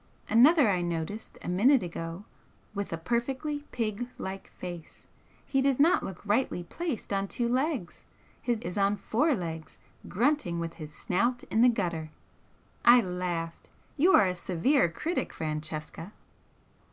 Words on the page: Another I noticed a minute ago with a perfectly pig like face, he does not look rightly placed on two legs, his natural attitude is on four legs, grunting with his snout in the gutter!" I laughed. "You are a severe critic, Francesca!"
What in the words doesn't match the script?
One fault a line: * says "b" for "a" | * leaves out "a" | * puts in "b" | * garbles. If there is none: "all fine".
* leaves out "natural attitude"